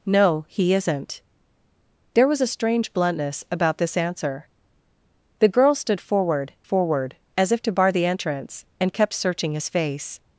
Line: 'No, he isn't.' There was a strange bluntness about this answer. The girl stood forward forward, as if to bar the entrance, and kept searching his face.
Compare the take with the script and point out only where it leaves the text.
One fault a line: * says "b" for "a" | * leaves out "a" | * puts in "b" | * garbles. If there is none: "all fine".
all fine